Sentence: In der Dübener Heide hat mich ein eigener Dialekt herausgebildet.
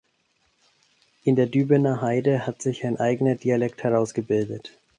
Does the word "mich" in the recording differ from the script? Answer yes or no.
yes